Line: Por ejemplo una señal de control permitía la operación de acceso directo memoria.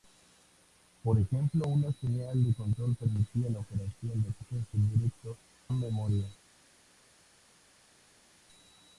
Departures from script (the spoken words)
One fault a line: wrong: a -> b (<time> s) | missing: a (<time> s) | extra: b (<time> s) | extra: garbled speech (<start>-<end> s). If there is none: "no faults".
no faults